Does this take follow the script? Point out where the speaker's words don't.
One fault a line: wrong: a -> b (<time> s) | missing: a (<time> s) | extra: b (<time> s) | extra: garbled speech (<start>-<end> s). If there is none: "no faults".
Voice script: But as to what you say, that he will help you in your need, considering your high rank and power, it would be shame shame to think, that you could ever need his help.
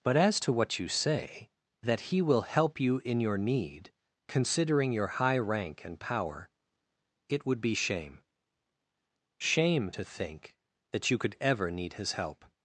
no faults